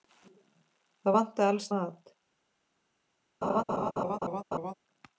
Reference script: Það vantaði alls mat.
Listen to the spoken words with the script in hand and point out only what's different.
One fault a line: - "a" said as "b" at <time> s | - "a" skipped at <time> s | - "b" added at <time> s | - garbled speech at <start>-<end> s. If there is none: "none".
none